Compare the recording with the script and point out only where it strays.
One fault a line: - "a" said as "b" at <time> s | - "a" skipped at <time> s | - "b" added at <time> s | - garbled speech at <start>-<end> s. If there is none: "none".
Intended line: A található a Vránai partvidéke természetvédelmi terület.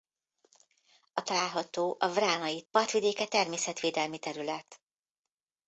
none